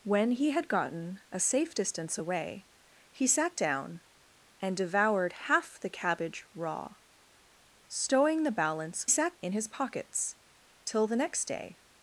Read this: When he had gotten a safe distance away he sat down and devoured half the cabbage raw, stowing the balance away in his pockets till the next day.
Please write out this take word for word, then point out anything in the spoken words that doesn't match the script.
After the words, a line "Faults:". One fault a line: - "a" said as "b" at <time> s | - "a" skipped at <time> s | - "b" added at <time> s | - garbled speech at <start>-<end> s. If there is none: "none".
When he had gotten a safe distance away he sat down and devoured half the cabbage raw, stowing the balance sat in his pockets till the next day.
Faults:
- "away" said as "sat" at 9.1 s